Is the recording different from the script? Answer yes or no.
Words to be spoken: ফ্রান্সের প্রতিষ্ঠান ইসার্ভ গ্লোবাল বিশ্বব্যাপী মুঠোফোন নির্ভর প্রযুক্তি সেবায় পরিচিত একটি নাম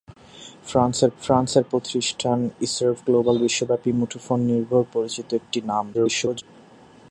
yes